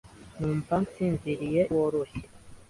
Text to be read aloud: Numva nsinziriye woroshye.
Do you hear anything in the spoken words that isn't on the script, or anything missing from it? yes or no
no